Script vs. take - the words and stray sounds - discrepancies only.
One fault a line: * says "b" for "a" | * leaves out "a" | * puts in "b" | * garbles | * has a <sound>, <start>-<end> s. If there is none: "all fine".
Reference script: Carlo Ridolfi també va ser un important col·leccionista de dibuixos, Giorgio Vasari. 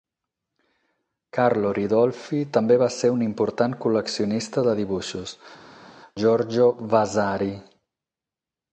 all fine